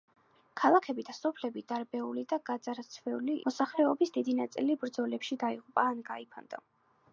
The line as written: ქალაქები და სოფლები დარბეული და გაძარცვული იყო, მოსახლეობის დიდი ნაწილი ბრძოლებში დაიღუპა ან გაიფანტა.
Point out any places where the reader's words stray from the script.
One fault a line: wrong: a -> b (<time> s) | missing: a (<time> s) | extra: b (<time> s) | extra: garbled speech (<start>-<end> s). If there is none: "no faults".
missing: იყო (3.4 s)